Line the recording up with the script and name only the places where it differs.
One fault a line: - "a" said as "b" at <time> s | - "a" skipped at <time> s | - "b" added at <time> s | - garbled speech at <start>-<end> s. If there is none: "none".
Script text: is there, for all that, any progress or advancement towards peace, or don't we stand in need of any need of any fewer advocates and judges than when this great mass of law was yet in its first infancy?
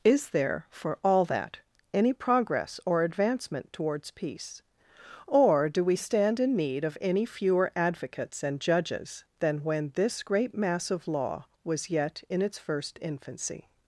- "don't" said as "do" at 5.7 s
- "need of any" skipped at 7.2 s